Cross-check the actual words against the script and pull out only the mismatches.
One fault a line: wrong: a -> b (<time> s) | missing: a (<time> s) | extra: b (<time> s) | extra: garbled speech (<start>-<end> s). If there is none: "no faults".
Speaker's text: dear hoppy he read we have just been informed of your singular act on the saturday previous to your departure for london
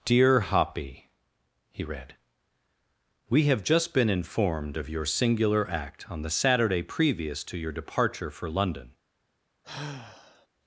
no faults